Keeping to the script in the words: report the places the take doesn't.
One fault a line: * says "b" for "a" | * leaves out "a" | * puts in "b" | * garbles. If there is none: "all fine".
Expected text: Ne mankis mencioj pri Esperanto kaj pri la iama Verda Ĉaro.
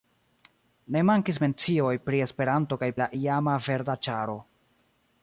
* leaves out "pri"